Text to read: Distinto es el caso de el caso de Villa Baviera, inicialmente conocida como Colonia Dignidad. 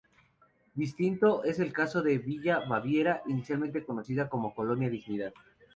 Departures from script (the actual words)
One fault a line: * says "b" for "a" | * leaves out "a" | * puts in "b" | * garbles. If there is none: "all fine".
* leaves out "el caso de"